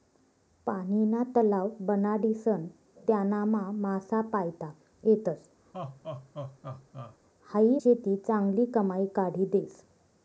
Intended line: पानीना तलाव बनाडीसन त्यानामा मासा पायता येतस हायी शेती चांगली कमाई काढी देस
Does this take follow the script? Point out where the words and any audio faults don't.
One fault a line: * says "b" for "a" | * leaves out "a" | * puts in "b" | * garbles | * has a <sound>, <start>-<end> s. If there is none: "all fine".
* has a laugh, 5.7-7.2 s